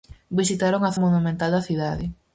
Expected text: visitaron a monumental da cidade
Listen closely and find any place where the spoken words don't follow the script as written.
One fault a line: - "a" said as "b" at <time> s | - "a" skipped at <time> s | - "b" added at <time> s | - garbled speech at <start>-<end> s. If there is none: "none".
none